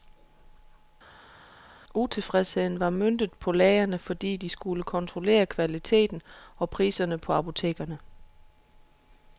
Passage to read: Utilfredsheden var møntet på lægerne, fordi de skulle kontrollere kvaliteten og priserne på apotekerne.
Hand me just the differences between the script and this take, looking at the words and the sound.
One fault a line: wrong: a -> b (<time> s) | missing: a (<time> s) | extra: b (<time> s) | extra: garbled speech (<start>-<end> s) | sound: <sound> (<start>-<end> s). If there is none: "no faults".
no faults